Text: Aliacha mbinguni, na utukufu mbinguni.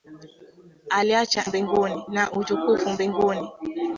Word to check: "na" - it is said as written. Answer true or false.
true